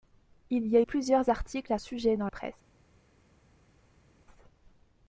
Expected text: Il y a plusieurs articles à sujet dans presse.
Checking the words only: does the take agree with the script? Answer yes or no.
yes